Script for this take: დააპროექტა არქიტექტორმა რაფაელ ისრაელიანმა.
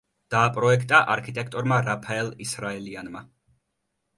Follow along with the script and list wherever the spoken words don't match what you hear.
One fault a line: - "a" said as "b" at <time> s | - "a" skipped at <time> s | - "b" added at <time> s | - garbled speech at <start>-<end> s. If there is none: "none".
none